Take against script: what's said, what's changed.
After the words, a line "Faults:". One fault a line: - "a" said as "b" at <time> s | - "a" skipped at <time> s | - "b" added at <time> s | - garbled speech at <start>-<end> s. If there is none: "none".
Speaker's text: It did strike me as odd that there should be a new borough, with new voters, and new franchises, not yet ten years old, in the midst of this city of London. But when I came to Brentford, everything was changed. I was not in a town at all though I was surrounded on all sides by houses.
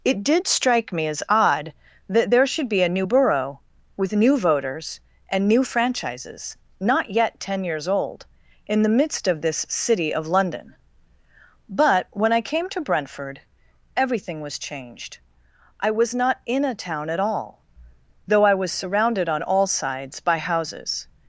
It did strike me as odd that there should be a new borough, with new voters, and new franchises, not yet ten years old, in the midst of this city of London. But when I came to Brentford, everything was changed. I was not in a town at all though I was surrounded on all sides by houses.
Faults:
none